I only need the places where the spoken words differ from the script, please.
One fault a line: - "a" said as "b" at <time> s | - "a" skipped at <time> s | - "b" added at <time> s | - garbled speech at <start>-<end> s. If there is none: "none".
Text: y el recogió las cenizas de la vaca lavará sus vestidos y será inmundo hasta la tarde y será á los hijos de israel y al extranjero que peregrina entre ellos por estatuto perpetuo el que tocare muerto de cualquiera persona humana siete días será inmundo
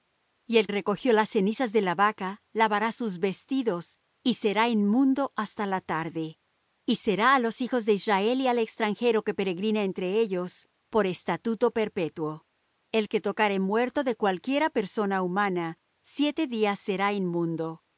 none